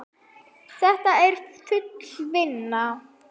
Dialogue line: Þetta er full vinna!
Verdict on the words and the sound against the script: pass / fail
pass